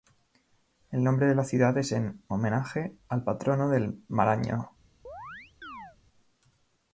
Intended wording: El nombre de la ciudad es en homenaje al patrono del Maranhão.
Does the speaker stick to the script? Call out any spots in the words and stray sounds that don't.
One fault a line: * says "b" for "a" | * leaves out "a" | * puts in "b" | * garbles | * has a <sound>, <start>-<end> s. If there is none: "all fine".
* has a chirp, 5.0-6.0 s